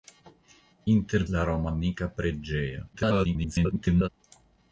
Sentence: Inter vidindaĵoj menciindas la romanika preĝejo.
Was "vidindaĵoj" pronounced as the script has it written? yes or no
no